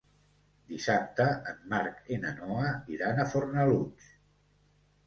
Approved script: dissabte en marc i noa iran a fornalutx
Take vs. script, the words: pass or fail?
fail